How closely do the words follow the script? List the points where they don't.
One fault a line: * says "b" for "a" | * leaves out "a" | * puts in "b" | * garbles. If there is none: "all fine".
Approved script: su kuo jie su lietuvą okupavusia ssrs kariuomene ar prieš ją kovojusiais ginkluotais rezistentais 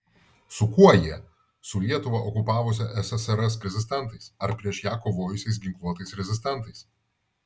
* says "rezistentais" for "kariuomene"